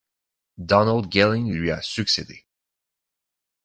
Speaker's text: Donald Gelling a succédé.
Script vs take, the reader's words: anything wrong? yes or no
yes